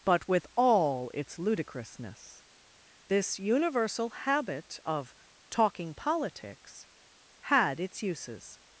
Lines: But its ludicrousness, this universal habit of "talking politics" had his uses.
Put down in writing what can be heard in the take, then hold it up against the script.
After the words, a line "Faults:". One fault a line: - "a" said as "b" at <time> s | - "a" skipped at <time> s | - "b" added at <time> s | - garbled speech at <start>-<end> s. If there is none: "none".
But with all its ludicrousness, this universal habit of "talking politics" had its uses.
Faults:
- "with all" added at 0.3 s
- "his" said as "its" at 7.8 s